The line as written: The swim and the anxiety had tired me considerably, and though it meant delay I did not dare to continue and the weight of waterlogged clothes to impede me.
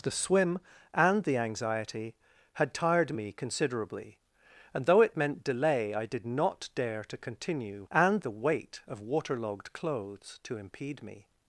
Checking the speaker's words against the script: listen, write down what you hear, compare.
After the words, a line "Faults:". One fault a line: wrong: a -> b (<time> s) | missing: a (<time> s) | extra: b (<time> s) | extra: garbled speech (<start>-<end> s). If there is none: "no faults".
The swim and the anxiety had tired me considerably, and though it meant delay I did not dare to continue and the weight of waterlogged clothes to impede me.
Faults:
no faults